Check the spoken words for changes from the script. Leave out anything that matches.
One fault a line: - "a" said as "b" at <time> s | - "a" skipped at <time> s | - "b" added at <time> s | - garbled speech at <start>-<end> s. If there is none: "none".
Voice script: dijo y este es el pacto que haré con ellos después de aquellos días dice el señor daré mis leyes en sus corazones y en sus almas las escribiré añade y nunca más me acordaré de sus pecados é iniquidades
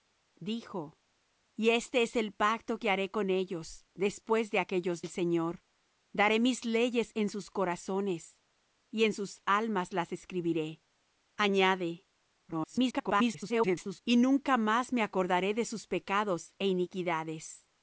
- "días dice" skipped at 5.0 s
- garbled speech at 12.5-14.0 s